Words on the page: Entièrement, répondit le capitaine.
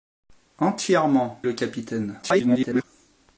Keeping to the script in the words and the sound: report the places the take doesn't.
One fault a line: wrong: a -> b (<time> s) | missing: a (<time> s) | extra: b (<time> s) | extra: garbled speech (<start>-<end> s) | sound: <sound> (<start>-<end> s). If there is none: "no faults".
missing: répondit (1.4 s)
extra: garbled speech (2.2-2.8 s)